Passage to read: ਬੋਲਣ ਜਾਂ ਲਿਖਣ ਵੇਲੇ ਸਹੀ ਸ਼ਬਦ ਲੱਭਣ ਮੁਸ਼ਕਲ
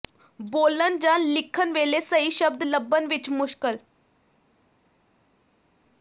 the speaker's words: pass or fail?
fail